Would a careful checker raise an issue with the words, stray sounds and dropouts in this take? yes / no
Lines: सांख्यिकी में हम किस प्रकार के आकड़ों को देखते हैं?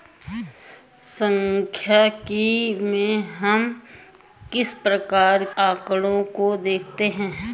yes